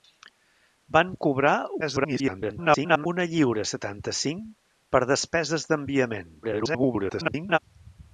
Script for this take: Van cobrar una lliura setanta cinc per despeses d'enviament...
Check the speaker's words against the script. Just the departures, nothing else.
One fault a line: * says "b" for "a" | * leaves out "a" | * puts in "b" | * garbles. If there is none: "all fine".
* garbles
* garbles